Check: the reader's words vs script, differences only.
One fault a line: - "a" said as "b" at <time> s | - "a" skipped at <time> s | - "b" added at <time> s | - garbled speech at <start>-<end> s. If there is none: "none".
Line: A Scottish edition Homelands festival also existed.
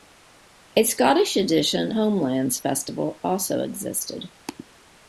none